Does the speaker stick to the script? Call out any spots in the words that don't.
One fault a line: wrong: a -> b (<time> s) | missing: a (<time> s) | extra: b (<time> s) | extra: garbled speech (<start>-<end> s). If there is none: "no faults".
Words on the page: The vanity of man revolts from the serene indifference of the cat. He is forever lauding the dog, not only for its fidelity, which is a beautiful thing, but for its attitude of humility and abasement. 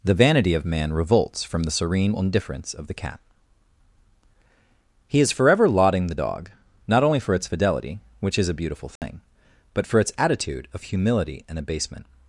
no faults